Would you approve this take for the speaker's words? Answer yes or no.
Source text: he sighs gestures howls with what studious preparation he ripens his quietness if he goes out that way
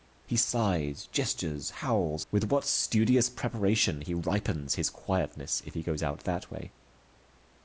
yes